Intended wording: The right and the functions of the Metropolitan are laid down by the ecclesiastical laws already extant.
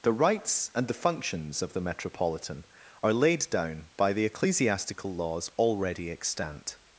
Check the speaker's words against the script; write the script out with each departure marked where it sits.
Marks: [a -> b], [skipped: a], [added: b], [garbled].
The [right -> rights] and the functions of the Metropolitan are laid down by the ecclesiastical laws already extant.